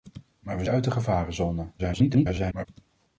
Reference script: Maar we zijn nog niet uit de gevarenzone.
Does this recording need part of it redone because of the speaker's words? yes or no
yes